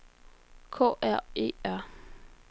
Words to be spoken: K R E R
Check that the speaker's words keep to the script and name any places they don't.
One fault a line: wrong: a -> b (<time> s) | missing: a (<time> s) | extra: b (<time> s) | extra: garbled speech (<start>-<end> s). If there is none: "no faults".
no faults